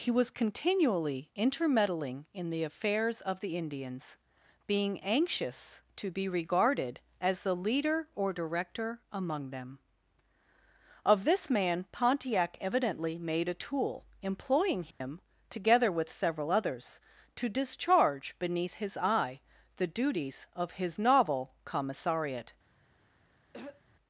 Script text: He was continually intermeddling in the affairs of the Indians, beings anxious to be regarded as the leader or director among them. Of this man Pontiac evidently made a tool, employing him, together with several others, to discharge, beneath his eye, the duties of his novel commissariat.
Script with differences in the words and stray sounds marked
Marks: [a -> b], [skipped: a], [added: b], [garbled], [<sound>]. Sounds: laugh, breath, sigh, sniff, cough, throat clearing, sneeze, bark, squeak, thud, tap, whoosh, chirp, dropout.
He was continually intermeddling in the affairs of the Indians, [beings -> being] anxious to be regarded as the leader or director among them. Of this man Pontiac evidently made a tool, employing him, [dropout] together with several others, to discharge, beneath his eye, the duties of his novel commissariat. [throat clearing]